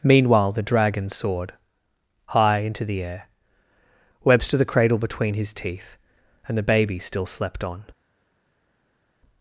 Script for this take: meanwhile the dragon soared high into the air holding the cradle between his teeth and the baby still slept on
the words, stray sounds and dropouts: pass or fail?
fail